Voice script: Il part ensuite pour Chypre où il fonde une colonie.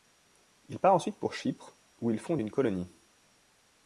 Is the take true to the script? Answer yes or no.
yes